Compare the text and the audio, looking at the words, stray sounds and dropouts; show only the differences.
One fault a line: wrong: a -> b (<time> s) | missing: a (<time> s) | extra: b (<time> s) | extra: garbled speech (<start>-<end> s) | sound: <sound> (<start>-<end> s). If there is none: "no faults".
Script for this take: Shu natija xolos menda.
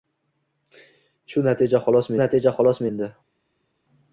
extra: natija xolos (2.2 s)